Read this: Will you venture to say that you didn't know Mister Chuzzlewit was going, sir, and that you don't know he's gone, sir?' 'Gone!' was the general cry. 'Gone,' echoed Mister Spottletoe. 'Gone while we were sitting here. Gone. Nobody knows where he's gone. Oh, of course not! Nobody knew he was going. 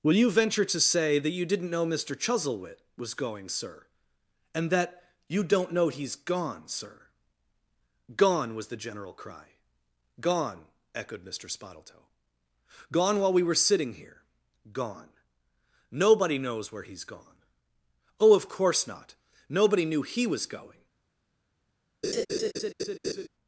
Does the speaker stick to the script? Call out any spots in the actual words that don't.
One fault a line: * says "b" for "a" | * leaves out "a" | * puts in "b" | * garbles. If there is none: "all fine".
all fine